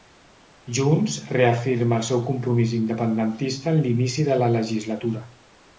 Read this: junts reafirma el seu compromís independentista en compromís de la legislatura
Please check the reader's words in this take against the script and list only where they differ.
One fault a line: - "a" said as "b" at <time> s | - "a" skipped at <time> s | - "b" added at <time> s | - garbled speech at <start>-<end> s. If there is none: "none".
- "compromís" said as "l'inici" at 3.9 s